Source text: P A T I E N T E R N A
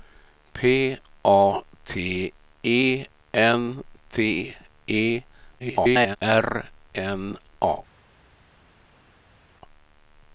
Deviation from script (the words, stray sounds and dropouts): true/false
true